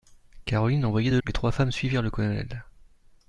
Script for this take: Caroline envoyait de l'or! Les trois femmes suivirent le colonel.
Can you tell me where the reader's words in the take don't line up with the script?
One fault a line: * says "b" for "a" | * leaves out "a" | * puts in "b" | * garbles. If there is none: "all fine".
* leaves out "l'or"